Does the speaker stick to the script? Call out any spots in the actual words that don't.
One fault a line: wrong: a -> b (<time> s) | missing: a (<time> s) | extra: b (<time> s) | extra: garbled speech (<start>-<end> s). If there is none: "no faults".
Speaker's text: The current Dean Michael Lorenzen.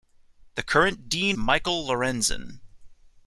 no faults